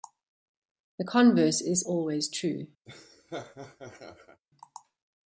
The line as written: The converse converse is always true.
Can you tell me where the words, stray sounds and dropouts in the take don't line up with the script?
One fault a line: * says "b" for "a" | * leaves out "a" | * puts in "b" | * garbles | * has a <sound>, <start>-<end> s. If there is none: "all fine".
* leaves out "converse"
* has a laugh, 2.9-4.4 s